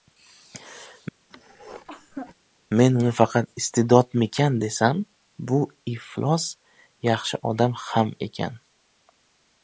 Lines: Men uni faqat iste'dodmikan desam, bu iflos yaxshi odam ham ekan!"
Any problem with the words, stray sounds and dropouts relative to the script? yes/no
yes